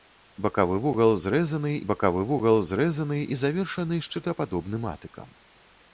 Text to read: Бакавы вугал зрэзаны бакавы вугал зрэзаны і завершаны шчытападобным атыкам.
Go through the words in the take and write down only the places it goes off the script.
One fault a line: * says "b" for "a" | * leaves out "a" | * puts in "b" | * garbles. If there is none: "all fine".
all fine